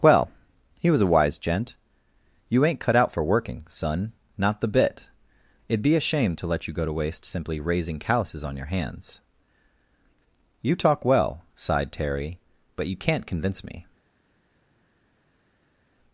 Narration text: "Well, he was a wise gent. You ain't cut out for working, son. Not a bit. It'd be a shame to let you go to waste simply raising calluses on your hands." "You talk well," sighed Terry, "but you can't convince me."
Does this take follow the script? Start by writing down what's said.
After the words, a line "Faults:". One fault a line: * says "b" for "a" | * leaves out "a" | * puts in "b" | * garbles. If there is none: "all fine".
"Well, he was a wise gent. You ain't cut out for working, son. Not the bit. It'd be a shame to let you go to waste simply raising calluses on your hands." "You talk well," sighed Terry, "but you can't convince me."
Faults:
* says "the" for "a"